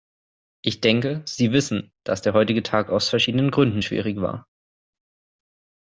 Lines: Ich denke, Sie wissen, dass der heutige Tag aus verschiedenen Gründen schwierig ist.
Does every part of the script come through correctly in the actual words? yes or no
no